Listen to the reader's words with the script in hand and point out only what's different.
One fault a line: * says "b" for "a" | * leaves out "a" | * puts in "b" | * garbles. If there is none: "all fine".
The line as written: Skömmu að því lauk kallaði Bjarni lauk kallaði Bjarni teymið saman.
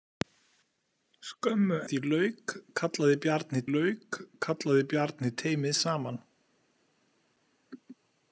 all fine